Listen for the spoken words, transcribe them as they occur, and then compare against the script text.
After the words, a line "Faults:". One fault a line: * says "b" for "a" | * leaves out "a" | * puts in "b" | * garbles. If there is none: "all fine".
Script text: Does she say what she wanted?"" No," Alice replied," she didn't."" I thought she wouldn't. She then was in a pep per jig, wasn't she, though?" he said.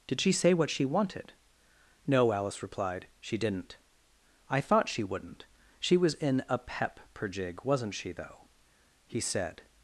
Did she say what she wanted?"" No," Alice replied," she didn't."" I thought she wouldn't. She was in a pep per jig, wasn't she, though?" he said.
Faults:
* says "Did" for "Does"
* leaves out "then"